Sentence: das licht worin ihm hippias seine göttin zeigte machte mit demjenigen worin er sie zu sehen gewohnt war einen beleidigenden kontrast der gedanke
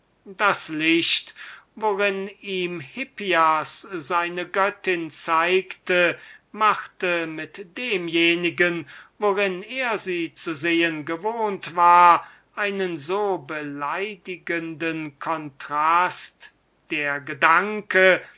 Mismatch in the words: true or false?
true